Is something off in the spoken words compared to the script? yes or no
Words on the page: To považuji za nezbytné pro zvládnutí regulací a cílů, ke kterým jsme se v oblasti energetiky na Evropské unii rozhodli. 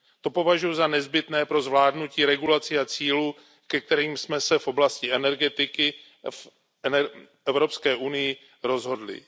yes